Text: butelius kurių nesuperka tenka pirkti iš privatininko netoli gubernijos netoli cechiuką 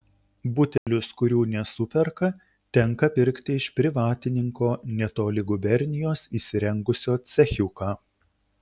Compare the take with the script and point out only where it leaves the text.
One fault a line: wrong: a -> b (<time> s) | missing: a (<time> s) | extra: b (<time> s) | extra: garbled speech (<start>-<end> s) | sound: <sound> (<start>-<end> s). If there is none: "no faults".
sound: dropout (0.8-0.9 s)
wrong: netoli -> įsirengusio (6.4 s)